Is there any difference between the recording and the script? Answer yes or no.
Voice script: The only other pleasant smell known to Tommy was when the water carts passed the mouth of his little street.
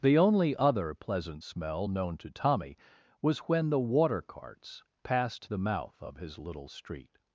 no